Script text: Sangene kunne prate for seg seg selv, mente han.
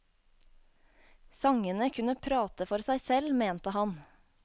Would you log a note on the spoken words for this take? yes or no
yes